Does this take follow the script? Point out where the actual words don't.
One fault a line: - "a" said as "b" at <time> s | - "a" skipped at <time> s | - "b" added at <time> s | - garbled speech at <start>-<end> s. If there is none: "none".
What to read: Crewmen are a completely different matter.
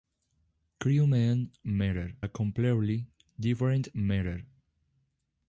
- "are" said as "matter" at 1.7 s